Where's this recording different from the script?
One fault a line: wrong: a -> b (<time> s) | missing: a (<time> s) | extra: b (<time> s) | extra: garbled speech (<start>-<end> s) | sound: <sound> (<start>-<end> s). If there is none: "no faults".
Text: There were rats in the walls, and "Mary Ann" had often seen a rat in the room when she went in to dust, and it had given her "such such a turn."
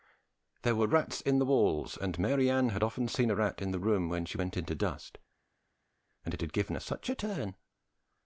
missing: such (7.1 s)